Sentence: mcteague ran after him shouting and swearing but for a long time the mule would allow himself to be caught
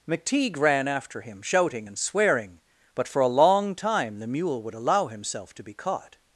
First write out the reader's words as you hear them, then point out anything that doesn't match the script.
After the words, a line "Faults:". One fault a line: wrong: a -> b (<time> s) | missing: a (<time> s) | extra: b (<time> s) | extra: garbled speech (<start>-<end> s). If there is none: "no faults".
mcteague ran after him shouting and swearing but for a long time the mule would allow himself to be caught
Faults:
no faults